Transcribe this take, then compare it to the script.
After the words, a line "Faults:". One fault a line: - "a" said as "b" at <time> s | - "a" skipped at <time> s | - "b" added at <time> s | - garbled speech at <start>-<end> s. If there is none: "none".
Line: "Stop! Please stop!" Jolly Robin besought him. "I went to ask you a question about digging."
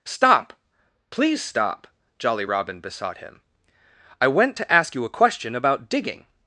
"Stop! Please stop!" Jolly Robin besought him. "I went to ask you a question about digging."
Faults:
none